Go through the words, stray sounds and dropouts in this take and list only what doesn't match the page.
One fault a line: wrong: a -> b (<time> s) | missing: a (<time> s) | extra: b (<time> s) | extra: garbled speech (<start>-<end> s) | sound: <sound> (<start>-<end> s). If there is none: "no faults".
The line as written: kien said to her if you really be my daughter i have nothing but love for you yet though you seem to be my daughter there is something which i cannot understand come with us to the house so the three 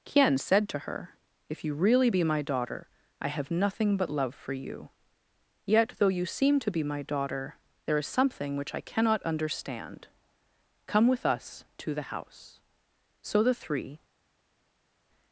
no faults